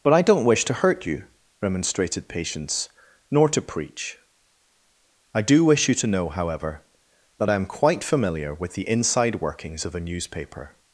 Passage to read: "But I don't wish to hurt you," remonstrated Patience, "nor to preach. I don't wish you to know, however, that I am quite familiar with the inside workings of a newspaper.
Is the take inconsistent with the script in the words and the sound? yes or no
yes